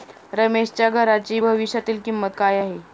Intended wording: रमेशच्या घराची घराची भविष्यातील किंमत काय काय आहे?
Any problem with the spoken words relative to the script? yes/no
yes